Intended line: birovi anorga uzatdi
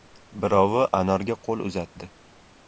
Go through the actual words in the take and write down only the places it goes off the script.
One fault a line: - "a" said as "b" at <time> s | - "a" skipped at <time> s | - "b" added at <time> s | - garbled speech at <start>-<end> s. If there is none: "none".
- "qo‘l" added at 1.5 s